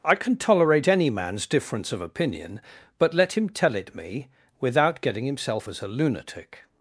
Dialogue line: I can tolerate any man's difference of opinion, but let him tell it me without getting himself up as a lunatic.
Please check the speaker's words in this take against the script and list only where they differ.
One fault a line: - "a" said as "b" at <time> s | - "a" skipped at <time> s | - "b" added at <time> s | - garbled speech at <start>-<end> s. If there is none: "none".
- "up" skipped at 5.7 s